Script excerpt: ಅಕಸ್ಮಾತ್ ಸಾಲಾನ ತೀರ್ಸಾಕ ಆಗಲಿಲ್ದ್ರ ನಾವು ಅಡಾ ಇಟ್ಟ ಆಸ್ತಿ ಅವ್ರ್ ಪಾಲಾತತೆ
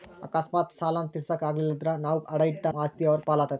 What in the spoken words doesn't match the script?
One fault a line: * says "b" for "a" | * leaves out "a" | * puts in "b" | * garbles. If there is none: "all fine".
all fine